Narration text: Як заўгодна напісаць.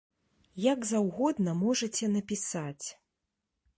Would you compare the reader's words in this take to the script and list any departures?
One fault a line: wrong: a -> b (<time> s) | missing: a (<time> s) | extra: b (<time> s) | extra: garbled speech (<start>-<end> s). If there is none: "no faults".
extra: можаце (1.6 s)